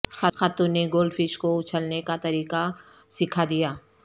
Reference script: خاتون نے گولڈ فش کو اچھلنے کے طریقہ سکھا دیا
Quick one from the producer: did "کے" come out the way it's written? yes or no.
no